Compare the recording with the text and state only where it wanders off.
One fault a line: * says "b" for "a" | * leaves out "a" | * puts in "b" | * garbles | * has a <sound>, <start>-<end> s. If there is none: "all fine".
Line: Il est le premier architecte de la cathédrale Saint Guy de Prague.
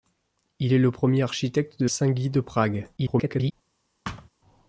* leaves out "la cathédrale"
* garbles
* has a thud, 4.0-4.3 s